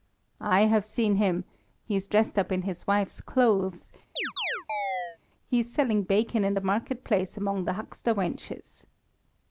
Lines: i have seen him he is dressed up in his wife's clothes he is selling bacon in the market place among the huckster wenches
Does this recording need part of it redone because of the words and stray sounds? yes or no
yes